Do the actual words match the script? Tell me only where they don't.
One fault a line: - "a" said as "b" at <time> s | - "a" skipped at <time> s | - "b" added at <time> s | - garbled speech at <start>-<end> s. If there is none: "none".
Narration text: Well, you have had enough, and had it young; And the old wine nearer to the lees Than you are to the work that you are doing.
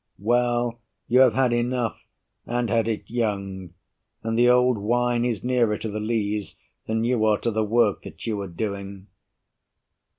- "is" added at 5.2 s